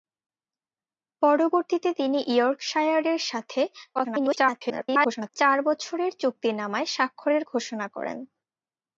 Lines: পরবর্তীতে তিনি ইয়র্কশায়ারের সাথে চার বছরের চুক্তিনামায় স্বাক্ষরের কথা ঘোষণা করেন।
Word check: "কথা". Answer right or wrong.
wrong